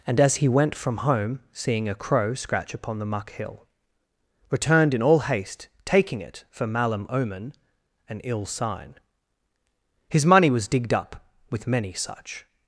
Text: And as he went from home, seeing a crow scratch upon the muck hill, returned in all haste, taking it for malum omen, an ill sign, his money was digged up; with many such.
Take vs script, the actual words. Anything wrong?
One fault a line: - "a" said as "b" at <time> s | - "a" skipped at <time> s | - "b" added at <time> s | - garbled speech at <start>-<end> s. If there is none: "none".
none